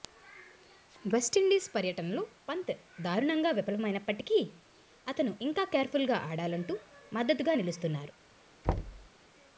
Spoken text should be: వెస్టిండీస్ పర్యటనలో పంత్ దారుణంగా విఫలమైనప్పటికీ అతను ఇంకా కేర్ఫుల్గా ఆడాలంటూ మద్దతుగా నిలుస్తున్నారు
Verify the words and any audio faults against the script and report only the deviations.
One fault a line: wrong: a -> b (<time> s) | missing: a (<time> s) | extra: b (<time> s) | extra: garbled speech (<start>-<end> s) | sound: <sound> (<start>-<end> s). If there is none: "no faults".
sound: thud (8.6-9.1 s)